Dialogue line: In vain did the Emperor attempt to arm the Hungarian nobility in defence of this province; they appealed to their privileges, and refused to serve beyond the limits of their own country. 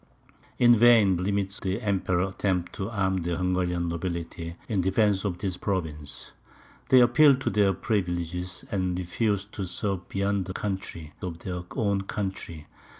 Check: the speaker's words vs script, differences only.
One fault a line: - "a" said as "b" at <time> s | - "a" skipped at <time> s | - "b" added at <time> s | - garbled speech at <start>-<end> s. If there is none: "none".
- "did" said as "limits" at 1.2 s
- "limits" said as "country" at 10.5 s